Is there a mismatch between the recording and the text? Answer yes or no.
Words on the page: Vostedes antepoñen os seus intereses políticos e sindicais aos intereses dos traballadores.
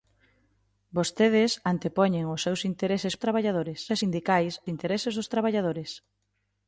yes